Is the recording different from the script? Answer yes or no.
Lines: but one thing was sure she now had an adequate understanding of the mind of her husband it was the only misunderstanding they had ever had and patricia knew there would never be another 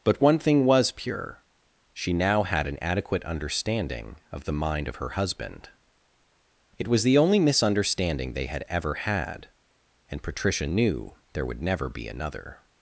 yes